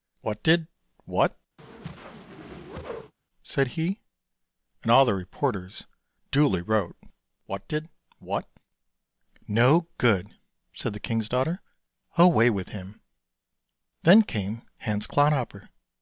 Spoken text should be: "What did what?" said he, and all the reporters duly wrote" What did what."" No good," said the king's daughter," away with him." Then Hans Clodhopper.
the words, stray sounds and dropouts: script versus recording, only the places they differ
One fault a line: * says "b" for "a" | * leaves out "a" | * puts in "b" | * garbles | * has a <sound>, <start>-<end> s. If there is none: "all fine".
* has a whoosh, 1.6-3.1 s
* puts in "came"